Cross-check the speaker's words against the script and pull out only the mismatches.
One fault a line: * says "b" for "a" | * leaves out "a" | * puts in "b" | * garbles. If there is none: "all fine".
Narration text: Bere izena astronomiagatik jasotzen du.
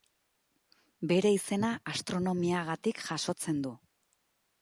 all fine